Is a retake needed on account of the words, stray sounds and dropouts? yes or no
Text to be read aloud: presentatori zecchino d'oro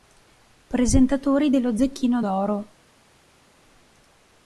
yes